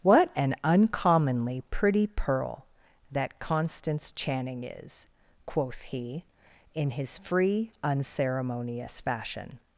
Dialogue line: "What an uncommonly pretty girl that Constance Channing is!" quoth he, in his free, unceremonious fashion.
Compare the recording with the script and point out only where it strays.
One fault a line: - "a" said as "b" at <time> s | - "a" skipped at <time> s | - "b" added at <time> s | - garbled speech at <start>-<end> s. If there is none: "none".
- "girl" said as "pearl" at 2.1 s